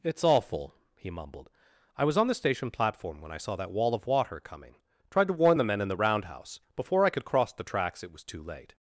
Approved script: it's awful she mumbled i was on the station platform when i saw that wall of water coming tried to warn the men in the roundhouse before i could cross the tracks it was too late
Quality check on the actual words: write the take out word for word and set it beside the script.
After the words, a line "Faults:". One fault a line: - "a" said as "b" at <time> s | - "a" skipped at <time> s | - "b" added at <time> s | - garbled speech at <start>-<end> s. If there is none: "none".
it's awful he mumbled i was on the station platform when i saw that wall of water coming tried to warn the men in the roundhouse before i could cross the tracks it was too late
Faults:
- "she" said as "he" at 1.0 s